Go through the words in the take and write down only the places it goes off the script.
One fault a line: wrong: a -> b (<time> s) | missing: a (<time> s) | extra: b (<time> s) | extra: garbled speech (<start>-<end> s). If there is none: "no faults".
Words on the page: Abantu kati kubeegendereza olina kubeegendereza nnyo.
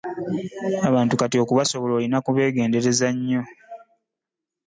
wrong: kubeegendereza -> okubasobola (1.4 s)